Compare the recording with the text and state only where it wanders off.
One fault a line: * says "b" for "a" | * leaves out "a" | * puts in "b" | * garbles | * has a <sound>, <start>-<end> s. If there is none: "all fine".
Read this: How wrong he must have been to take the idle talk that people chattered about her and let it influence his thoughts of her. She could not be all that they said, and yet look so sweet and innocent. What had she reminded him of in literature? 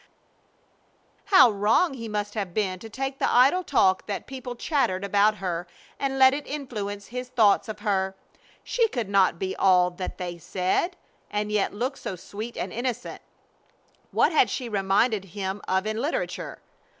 all fine